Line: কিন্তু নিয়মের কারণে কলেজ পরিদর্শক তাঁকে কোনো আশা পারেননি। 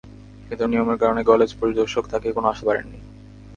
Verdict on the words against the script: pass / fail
pass